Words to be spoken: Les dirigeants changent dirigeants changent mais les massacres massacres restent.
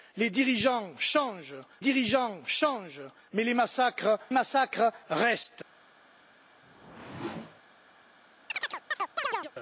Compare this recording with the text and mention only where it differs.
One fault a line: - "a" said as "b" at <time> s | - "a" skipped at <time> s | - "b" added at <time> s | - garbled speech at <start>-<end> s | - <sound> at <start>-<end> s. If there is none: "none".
- whoosh at 6.6-7.6 s
- chirp at 8.5-9.5 s